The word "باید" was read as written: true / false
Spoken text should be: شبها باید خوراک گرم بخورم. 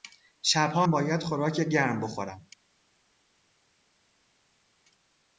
true